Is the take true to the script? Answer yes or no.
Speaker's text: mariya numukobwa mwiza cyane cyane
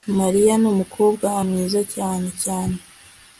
yes